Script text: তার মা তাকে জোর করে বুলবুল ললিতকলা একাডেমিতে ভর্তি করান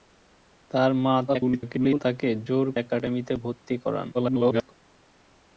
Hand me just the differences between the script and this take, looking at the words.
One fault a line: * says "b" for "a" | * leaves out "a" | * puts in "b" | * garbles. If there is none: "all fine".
* garbles
* leaves out "করে বুলবুল ললিতকলা"
* garbles